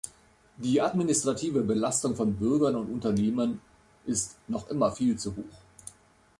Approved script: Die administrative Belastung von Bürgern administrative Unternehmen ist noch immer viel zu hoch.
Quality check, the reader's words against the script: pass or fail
fail